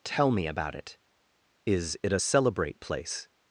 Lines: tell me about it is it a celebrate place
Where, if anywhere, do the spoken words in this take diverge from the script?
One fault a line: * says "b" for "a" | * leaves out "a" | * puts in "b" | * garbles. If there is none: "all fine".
all fine